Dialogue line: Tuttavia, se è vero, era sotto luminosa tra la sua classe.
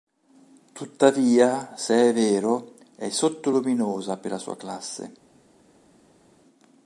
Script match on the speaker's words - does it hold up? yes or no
no